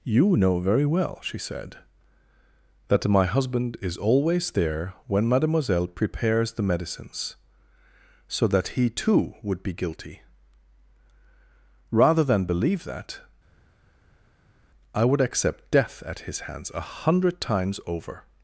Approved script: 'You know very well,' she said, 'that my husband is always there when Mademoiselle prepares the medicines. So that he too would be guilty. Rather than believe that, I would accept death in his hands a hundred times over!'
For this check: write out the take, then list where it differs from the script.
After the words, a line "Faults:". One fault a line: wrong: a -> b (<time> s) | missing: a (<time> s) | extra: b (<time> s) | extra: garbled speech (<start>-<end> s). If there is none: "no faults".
'You know very well,' she said, 'that my husband is always there when Mademoiselle prepares the medicines. So that he too would be guilty. Rather than believe that, I would accept death at his hands a hundred times over!'
Faults:
wrong: in -> at (16.0 s)